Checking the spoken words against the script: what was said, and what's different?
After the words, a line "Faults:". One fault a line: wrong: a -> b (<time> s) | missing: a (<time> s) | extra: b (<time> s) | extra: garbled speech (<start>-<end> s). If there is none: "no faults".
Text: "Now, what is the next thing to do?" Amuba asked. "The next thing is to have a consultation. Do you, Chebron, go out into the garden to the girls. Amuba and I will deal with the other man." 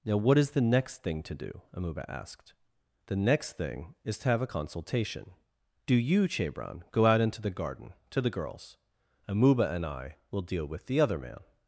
"Now, what is the next thing to do?" Amuba asked. "The next thing is to have a consultation. Do you, Chebron, go out into the garden to the girls. Amuba and I will deal with the other man."
Faults:
no faults